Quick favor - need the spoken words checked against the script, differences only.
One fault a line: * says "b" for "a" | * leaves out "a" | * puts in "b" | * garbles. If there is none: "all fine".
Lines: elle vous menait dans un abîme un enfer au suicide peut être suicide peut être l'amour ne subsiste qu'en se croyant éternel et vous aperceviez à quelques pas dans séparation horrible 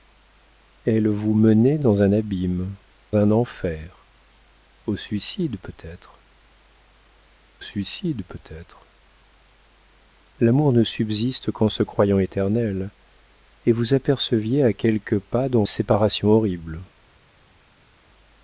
all fine